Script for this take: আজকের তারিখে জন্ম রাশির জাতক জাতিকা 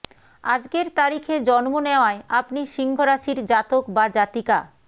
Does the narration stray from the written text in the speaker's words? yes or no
yes